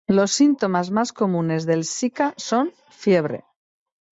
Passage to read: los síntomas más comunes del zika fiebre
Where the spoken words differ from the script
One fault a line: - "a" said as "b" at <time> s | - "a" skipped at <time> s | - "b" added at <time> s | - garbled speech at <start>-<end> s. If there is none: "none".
- "son" added at 2.4 s